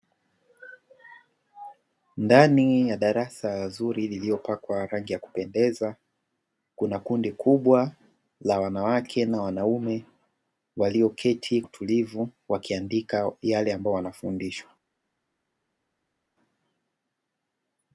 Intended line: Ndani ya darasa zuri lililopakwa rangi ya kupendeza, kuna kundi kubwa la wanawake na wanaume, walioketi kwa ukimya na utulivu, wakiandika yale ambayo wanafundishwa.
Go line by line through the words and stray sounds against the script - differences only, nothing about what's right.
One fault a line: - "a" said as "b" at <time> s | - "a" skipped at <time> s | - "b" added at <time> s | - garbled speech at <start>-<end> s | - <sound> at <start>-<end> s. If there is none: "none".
- "kwa ukimya na" skipped at 11.6 s